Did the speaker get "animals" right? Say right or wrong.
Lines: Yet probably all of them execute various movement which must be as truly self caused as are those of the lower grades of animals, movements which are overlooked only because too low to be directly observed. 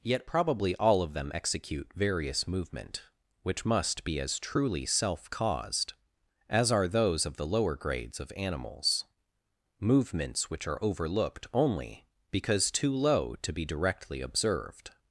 right